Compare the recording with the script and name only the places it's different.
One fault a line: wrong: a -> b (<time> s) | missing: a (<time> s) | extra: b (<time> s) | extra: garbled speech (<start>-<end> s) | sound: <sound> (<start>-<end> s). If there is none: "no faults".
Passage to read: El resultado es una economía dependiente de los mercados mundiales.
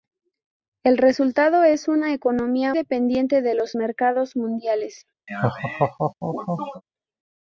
sound: laugh (5.3-6.8 s)